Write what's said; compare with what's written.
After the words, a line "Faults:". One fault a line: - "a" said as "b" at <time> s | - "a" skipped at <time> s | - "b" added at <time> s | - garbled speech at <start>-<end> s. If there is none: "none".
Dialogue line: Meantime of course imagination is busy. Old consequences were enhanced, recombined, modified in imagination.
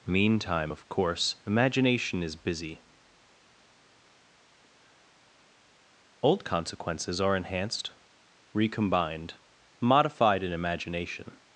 Meantime of course imagination is busy. Old consequences are enhanced, recombined, modified in imagination.
Faults:
- "were" said as "are" at 7.2 s